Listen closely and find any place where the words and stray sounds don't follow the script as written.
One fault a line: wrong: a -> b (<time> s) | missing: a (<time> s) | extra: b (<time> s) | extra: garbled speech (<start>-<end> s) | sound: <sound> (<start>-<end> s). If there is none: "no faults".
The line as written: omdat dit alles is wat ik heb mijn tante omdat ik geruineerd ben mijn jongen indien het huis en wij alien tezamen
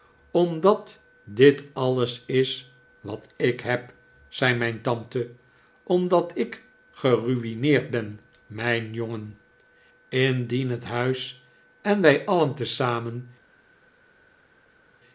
extra: zei (4.3 s)